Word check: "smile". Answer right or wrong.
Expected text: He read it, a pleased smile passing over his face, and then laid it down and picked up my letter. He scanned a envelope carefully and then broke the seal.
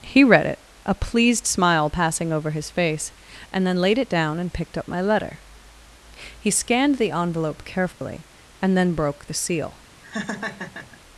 right